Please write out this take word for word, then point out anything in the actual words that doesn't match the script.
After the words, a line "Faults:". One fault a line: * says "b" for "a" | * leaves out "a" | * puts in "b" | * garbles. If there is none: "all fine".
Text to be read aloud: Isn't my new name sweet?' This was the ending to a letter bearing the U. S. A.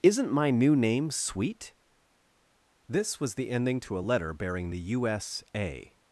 Isn't my new name sweet?' This was the ending to a letter bearing the U. S. A.
Faults:
all fine